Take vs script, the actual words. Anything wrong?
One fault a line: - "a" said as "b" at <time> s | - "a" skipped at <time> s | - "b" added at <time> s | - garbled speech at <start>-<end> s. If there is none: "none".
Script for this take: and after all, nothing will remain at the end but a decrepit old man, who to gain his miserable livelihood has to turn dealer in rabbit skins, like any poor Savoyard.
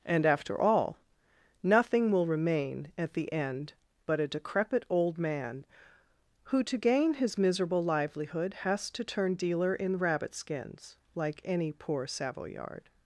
none